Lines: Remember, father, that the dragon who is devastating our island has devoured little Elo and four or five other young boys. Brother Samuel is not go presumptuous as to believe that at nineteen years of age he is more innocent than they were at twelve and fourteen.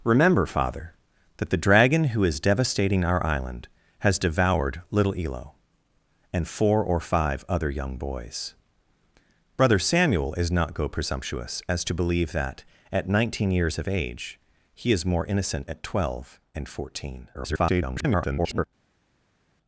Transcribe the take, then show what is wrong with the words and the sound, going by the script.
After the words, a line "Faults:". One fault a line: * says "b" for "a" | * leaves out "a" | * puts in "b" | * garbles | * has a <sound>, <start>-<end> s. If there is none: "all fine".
Remember, father, that the dragon who is devastating our island has devoured little Elo and four or five other young boys. Brother Samuel is not go presumptuous as to believe that at nineteen years of age he is more innocent at twelve and fourteen. [garbled]
Faults:
* leaves out "than they were"
* garbles